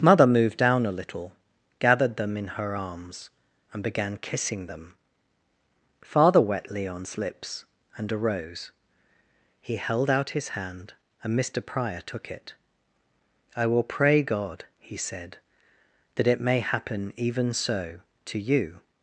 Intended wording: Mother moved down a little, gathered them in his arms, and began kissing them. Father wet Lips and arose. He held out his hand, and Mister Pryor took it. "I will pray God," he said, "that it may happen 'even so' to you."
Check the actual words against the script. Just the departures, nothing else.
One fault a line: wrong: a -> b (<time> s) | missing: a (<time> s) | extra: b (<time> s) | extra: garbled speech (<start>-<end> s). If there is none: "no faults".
wrong: his -> her (2.5 s)
extra: Leon's (6.7 s)